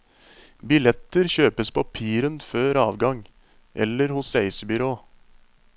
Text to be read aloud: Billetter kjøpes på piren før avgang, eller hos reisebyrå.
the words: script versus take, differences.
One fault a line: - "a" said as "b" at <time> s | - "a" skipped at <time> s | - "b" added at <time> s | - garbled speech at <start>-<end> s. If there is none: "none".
none